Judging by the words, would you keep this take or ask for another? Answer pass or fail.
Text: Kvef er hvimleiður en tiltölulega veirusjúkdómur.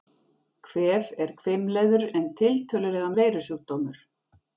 pass